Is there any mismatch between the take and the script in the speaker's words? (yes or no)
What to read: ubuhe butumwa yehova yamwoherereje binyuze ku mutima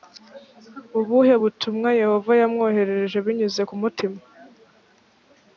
no